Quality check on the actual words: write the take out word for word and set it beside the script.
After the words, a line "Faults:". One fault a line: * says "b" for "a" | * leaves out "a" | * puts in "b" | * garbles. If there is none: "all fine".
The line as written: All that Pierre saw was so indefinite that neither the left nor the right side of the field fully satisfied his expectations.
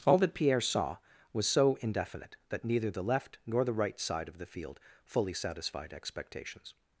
All that Pierre saw was so indefinite that neither the left nor the right side of the field fully satisfied expectations.
Faults:
* leaves out "his"